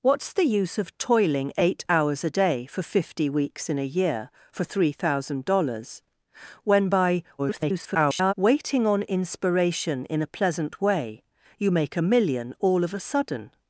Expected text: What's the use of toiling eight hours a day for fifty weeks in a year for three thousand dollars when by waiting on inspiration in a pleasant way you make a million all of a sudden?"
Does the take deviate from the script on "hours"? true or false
false